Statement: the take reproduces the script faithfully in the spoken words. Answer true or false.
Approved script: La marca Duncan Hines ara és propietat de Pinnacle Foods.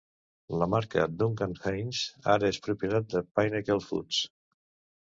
true